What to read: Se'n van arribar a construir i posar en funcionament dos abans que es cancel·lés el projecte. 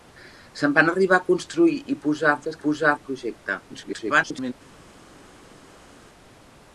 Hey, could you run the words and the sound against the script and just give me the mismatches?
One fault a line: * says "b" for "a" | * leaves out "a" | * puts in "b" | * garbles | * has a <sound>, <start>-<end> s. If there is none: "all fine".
* leaves out "funcionament dos abans"
* says "posar" for "cancel·lés"
* garbles